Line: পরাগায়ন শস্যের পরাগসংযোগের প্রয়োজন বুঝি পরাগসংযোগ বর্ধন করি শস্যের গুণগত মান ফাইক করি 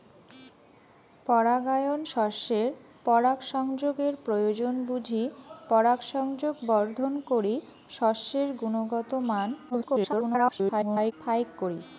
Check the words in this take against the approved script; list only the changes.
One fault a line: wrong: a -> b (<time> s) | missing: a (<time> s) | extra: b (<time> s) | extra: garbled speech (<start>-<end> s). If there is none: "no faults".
extra: garbled speech (9.7-11.1 s)